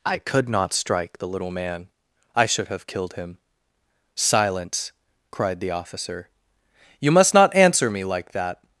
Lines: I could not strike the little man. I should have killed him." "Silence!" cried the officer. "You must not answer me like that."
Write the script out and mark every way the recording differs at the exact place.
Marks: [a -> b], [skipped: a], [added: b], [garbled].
I could not strike the little man. I should have killed him." "Silence!" cried the officer. "You must not answer me like that."